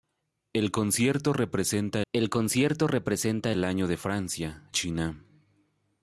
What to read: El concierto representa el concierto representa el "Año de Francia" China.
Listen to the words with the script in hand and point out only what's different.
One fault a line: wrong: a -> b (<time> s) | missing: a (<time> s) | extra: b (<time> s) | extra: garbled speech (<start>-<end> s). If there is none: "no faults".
no faults